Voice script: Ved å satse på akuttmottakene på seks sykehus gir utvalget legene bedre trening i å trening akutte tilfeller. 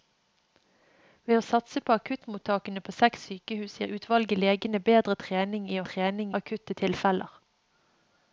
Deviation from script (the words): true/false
false